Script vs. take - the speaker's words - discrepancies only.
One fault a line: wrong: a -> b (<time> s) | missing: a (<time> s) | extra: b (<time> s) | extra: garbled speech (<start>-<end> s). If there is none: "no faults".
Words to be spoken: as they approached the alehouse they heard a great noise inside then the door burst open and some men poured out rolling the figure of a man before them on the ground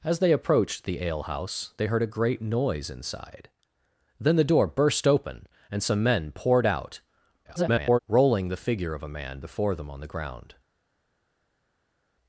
extra: garbled speech (7.4-8.0 s)